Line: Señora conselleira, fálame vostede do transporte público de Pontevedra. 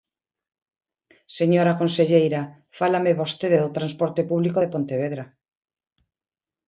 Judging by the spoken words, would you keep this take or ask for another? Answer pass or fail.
pass